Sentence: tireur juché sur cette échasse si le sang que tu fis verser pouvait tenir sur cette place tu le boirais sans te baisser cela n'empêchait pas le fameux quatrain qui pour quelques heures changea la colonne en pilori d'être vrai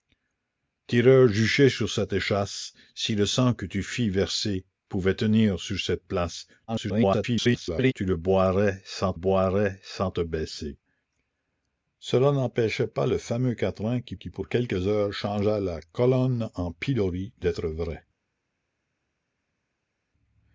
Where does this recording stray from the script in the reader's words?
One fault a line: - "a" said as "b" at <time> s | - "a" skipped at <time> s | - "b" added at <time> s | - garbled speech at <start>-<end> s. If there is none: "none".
- garbled speech at 6.7-7.9 s
- "boirais sans" added at 9.1 s
- "qui" added at 14.1 s